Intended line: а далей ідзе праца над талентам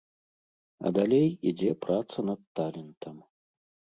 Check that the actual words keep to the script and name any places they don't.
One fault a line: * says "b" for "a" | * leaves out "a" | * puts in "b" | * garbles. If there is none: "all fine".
all fine